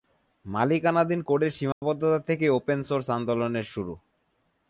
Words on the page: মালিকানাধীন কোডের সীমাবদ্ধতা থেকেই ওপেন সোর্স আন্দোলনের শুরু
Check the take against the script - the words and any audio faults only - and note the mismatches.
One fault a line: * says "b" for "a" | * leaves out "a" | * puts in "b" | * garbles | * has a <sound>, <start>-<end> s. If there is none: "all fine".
* has a dropout, 1.7-1.8 s